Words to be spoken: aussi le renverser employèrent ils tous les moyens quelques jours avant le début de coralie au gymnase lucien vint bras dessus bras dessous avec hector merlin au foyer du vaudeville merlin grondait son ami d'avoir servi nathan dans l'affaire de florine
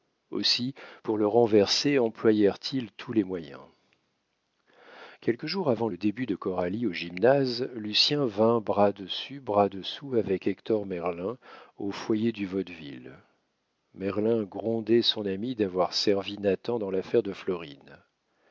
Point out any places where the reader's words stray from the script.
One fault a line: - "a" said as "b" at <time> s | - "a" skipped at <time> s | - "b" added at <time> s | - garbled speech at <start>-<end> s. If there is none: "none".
- "pour" added at 1.0 s